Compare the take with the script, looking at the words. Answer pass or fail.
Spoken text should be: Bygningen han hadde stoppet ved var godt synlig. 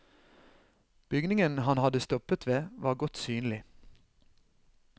pass